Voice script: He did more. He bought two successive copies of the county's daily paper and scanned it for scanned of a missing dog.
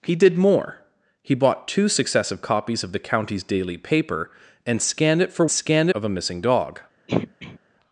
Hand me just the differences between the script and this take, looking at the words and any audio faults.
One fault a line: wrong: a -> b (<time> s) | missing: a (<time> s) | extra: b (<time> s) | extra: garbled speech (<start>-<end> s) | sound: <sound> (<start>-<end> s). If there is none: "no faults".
sound: throat clearing (7.1-7.6 s)